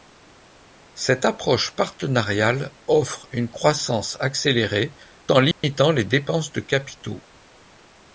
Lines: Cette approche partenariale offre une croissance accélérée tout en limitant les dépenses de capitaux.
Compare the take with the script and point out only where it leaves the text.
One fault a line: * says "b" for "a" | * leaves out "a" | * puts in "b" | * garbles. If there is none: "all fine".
* leaves out "tout"